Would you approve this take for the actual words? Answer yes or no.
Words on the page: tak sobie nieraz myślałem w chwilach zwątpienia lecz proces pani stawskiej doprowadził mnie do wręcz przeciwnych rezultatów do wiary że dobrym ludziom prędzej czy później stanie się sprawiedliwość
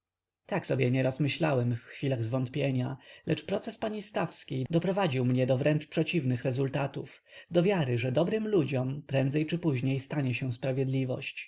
yes